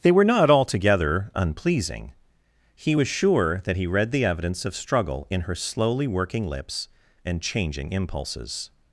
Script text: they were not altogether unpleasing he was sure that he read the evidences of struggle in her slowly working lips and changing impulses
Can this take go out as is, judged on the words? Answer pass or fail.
fail